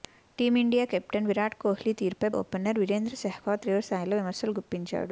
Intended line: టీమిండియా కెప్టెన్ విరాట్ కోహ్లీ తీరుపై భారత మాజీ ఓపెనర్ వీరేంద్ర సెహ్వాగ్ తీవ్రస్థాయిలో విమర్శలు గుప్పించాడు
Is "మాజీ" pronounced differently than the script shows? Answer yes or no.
yes